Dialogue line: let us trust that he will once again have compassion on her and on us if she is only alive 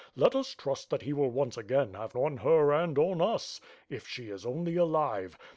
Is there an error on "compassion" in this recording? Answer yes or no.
yes